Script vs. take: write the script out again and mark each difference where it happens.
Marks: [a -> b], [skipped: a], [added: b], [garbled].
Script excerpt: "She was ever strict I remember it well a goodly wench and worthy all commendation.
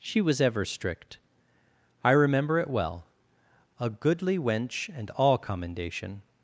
"She was ever strict I remember it well a goodly wench and [skipped: worthy] all commendation.